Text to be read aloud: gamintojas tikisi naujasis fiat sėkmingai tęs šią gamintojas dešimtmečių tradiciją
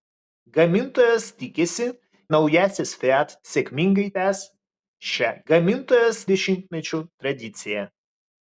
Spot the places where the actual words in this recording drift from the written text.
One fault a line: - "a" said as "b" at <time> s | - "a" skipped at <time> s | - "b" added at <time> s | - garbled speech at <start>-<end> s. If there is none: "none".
none